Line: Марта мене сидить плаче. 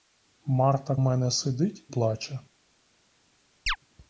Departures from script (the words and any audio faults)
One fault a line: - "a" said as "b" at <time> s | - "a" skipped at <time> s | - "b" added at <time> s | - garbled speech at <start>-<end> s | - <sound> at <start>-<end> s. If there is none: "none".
- chirp at 3.7-3.8 s